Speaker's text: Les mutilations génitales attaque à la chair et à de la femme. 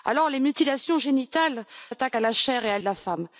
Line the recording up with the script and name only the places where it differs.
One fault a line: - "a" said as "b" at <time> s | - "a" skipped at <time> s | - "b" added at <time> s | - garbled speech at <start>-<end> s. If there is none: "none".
none